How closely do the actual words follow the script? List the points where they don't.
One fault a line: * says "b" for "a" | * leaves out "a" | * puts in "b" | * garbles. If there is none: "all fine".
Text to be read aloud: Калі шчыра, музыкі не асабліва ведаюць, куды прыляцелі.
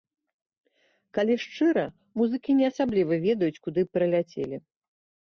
all fine